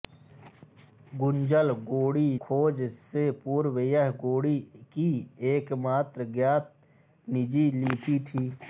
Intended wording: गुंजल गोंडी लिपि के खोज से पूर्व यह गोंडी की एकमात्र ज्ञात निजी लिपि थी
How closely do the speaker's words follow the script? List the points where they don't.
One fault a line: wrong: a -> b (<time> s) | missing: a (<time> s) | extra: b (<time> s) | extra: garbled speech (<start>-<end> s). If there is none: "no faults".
missing: लिपि के (2.2 s)